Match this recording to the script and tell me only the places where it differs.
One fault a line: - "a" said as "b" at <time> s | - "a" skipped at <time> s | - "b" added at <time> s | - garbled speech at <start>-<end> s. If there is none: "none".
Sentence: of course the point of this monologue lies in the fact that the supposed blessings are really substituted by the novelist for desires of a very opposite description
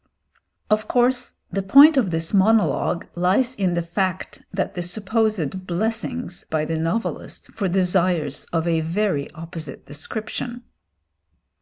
- "are really substituted" skipped at 6.4 s